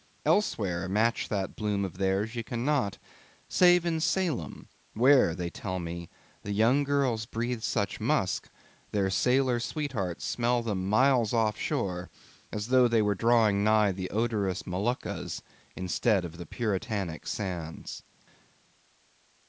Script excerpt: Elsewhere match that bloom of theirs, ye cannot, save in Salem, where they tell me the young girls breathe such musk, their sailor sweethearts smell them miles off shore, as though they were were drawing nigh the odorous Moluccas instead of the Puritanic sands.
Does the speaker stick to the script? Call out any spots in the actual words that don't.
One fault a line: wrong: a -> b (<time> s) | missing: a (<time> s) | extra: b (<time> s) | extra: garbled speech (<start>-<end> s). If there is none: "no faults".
missing: were (13.1 s)